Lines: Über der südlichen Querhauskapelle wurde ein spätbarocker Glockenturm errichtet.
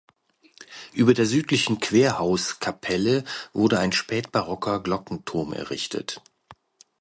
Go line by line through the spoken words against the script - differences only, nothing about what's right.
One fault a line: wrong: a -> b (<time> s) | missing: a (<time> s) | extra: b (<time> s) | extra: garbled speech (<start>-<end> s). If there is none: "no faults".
no faults